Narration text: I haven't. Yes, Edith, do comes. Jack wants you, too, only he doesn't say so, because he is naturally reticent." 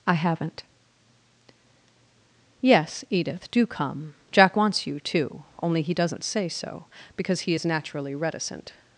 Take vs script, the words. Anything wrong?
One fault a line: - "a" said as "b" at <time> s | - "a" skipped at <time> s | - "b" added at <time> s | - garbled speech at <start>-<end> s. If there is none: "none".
- "comes" said as "come" at 3.6 s